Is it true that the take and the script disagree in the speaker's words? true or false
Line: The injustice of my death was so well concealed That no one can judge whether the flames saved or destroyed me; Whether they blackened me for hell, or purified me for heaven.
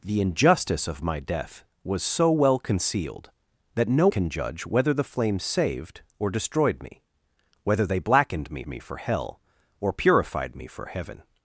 true